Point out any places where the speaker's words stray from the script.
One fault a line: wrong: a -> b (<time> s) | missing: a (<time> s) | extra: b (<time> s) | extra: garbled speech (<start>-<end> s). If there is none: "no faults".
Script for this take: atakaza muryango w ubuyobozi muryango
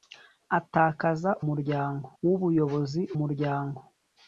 no faults